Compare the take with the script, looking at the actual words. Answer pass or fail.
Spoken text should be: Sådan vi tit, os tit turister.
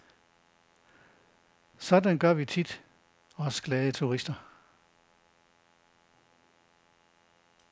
fail